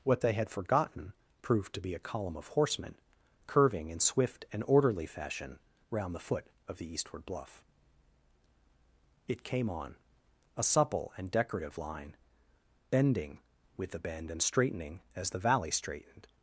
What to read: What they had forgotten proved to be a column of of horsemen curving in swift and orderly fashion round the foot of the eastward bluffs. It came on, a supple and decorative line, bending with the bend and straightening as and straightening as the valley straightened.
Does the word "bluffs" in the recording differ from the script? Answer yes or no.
yes